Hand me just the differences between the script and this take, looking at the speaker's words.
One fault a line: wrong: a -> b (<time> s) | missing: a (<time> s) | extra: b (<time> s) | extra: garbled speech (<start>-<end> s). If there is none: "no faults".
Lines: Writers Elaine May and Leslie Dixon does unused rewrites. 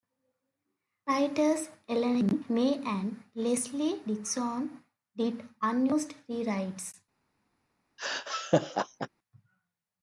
wrong: does -> did (5.2 s)